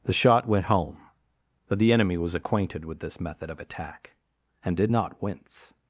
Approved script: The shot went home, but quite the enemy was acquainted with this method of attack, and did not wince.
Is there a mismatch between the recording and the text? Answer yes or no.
yes